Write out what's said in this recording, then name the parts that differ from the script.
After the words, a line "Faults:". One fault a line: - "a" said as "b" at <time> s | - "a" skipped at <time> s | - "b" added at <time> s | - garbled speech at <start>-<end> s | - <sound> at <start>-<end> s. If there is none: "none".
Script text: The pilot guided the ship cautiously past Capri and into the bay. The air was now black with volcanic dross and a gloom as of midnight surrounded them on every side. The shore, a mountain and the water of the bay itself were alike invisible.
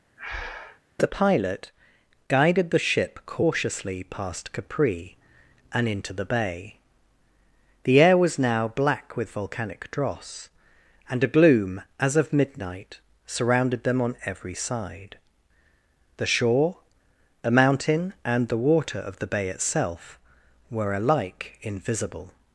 The pilot guided the ship cautiously past Capri and into the bay. The air was now black with volcanic dross and a gloom as of midnight surrounded them on every side. The shore, a mountain and the water of the bay itself were alike invisible.
Faults:
- breath at 0.2-0.8 s